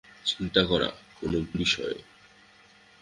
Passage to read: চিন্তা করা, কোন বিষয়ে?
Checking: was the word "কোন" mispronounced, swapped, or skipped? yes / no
yes